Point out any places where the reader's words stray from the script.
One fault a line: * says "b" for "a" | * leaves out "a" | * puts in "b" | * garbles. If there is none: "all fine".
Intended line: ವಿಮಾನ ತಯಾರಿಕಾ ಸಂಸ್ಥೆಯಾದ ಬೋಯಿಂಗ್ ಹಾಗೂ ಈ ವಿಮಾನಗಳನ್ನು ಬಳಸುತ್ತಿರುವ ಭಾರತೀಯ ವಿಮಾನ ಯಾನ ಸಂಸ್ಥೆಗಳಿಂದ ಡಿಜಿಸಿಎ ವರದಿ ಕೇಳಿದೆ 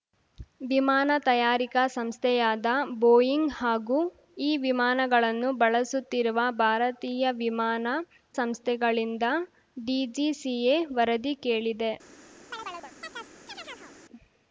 * leaves out "ಯಾನ"